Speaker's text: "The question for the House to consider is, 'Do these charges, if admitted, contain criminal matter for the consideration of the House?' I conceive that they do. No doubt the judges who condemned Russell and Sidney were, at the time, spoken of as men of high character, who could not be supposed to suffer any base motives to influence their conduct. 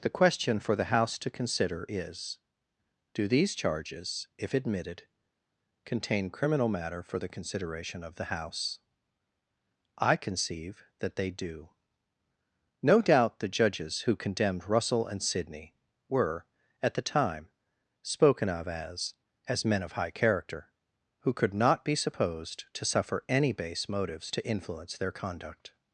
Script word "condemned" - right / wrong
right